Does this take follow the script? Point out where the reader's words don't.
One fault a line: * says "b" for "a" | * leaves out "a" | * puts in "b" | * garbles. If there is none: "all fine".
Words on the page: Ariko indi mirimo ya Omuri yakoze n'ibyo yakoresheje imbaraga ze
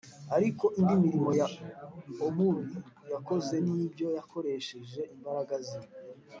all fine